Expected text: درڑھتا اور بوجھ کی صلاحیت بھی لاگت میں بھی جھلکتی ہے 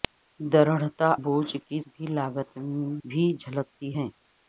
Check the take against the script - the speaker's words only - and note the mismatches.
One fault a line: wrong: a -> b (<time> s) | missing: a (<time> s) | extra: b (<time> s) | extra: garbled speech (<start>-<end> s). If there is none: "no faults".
missing: اور (1.1 s)
missing: صلاحیت (1.8 s)
missing: میں (2.6 s)